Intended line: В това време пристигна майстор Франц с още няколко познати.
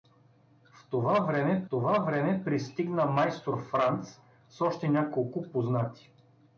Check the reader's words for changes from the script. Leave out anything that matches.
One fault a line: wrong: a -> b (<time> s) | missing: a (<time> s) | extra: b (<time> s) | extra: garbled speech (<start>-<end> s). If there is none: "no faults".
extra: това време (1.7 s)